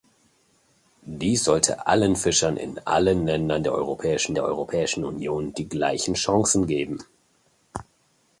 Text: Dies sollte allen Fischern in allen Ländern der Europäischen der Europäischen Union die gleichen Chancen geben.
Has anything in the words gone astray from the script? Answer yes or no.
no